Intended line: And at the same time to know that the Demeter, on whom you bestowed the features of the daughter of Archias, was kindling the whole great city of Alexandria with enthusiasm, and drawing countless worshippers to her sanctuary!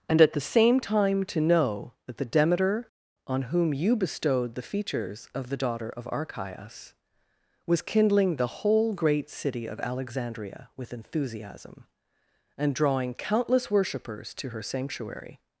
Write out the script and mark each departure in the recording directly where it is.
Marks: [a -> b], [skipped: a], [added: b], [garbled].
And at the same time to know that the Demeter, on whom you bestowed the features of the daughter of Archias, was kindling the whole great city of Alexandria with enthusiasm, and drawing countless worshippers to her sanctuary!